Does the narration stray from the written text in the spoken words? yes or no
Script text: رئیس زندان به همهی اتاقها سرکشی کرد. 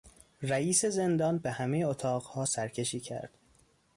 no